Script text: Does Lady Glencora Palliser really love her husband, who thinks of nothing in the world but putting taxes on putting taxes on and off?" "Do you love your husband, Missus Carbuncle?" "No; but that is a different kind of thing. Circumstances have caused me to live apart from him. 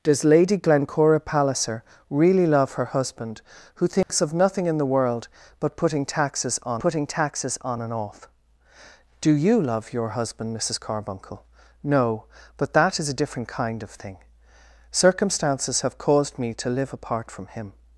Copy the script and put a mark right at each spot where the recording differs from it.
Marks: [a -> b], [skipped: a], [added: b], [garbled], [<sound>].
Does Lady Glencora Palliser really love her husband, who thinks [dropout] of nothing in the world but putting taxes on putting taxes on and off?" "Do you love your husband, Missus Carbuncle?" "No; but that is a different kind of thing. Circumstances have caused me to live apart from him.